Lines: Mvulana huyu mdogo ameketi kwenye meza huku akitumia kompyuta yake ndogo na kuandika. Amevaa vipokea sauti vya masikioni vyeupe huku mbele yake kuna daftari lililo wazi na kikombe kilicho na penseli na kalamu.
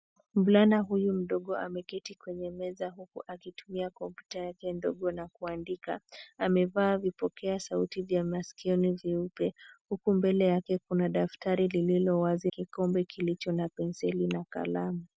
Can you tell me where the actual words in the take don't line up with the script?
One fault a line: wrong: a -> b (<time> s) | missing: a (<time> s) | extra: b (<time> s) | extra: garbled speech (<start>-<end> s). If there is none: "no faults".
missing: na (12.5 s)